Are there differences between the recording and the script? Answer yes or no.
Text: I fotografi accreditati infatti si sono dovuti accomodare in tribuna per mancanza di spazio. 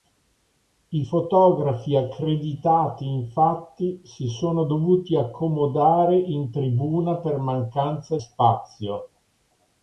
yes